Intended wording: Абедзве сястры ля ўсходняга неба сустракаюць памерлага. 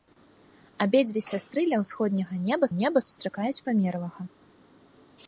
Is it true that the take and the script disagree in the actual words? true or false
true